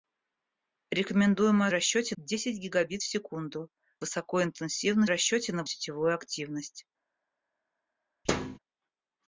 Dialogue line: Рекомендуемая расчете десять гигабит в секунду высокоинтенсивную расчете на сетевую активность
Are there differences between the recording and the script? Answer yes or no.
no